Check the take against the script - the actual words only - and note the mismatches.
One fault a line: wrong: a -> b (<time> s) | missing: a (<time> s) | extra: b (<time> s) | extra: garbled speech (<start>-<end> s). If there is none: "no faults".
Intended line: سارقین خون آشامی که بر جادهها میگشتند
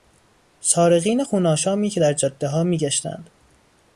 wrong: بر -> در (2.0 s)